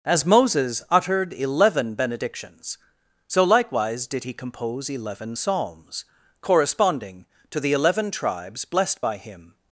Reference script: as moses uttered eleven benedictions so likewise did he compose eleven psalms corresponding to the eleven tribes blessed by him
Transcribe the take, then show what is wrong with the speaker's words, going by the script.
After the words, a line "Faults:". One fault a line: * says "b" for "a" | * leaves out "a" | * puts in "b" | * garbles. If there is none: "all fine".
as moses uttered eleven benedictions so likewise did he compose eleven psalms corresponding to the eleven tribes blessed by him
Faults:
all fine